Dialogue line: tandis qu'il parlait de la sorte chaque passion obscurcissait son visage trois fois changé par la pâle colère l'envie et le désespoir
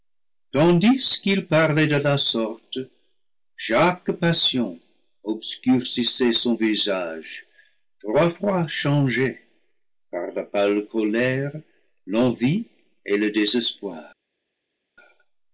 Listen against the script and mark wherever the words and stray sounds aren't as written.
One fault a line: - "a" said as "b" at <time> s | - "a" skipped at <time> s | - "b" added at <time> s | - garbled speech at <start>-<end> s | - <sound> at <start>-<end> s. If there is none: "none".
none